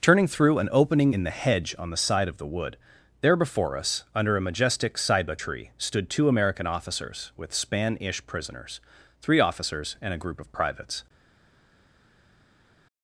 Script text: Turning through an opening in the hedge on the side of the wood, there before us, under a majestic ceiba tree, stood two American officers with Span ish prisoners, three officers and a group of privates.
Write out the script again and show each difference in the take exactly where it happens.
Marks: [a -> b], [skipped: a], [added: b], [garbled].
Turning through an opening in the hedge on the side of the wood, there before us, under a majestic ceiba tree, stood two American officers with Span ish prisoners, three officers and a group of privates.